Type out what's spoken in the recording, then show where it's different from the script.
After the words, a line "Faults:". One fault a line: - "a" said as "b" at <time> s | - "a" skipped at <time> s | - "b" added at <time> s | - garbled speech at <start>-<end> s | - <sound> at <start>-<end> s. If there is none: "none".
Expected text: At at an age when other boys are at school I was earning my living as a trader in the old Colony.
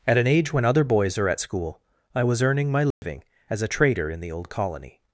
At an age when other boys are at school I was earning my living as a trader in the old Colony.
Faults:
- "at" skipped at 0.2 s
- dropout at 2.9-3.0 s